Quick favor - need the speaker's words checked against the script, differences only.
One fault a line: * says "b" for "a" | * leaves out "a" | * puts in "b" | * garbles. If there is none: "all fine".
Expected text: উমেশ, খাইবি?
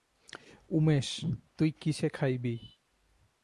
* puts in "তুই কিসে"